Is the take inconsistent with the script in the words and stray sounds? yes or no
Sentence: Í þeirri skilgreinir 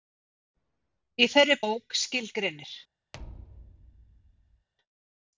yes